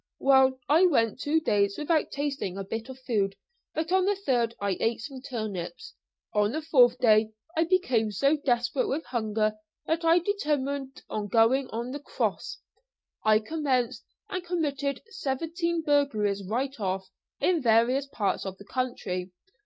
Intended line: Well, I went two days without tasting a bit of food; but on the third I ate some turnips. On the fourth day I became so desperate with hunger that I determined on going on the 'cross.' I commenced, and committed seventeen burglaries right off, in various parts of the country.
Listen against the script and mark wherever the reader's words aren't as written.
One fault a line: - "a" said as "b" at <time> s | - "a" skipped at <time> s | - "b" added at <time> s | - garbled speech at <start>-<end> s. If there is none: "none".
none